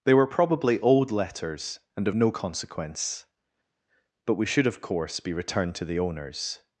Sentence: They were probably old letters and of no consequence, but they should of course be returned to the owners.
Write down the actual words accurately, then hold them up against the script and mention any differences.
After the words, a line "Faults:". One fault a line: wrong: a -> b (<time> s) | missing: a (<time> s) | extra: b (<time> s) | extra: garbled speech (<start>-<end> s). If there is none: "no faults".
They were probably old letters and of no consequence, but we should of course be returned to the owners.
Faults:
wrong: they -> we (4.4 s)